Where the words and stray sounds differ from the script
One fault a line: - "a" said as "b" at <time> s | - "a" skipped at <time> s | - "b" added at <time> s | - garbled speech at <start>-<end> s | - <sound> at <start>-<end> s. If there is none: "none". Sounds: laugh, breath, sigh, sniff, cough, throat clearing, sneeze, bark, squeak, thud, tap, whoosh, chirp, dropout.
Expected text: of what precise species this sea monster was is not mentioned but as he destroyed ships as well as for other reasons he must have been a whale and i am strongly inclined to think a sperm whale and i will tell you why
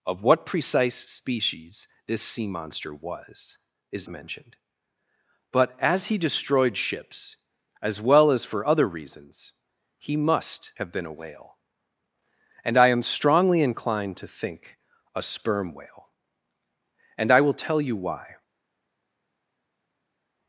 - "not" skipped at 4.1 s